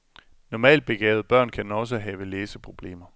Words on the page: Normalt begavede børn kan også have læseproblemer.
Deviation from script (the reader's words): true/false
false